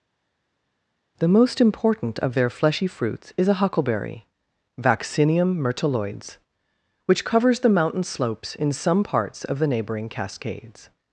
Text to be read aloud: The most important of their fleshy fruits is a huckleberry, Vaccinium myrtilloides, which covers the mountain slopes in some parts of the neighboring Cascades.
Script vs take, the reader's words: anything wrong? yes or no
no